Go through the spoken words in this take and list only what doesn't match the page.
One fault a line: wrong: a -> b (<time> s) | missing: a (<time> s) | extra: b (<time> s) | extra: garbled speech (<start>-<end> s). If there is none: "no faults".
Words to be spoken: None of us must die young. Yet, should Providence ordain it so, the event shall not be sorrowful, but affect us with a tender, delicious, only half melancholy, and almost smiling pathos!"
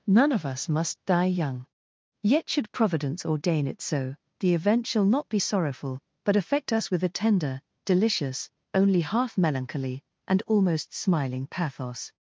no faults